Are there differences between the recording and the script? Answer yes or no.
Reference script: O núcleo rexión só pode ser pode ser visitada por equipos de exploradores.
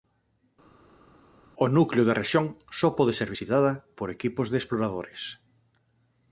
yes